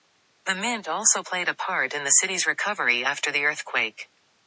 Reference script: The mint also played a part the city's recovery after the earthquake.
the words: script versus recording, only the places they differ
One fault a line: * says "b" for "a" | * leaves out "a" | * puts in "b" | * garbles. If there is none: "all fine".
* puts in "in"